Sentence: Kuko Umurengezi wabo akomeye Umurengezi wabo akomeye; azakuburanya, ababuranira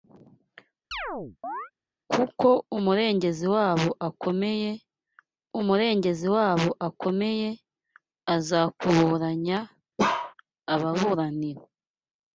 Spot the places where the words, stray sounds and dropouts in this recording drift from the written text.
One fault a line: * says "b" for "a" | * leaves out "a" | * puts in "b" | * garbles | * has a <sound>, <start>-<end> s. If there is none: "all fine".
* has a chirp, 0.9-1.7 s
* has a bark, 10.0-10.3 s